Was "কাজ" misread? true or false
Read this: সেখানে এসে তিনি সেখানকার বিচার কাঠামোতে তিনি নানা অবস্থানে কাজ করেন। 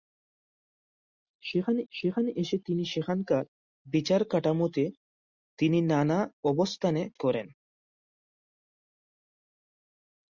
true